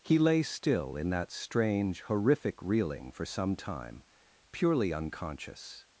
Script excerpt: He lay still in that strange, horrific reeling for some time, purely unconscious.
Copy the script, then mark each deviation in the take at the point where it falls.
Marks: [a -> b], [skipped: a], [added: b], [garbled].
He lay still in that strange, horrific reeling for some time, purely unconscious.